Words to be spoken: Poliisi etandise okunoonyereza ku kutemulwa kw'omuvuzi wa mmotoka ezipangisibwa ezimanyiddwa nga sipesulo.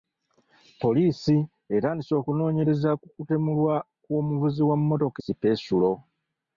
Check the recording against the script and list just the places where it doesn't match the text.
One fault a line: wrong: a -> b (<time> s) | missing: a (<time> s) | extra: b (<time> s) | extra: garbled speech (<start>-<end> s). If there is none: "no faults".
missing: ezipangisibwa ezimanyiddwa nga (5.2 s)